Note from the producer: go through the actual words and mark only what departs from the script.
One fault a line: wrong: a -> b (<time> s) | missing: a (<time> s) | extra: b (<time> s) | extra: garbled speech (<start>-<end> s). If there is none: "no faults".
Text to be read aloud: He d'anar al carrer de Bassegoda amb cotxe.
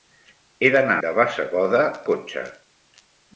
missing: al carrer (0.9 s)
missing: amb (1.9 s)